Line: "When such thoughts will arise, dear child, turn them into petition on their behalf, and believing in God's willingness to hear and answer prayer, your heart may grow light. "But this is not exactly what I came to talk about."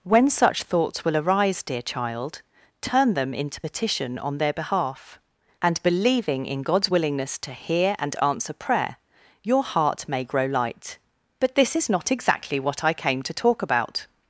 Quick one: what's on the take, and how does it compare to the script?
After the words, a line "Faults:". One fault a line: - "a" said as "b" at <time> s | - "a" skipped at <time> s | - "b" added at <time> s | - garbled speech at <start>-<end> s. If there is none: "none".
"When such thoughts will arise, dear child, turn them into petition on their behalf, and believing in God's willingness to hear and answer prayer, your heart may grow light. "But this is not exactly what I came to talk about."
Faults:
none